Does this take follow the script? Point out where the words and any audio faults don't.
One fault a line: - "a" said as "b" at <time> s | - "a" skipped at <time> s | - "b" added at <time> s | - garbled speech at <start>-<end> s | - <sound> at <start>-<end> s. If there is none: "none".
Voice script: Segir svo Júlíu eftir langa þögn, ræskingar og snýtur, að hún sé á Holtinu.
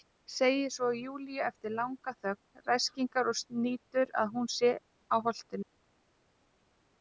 none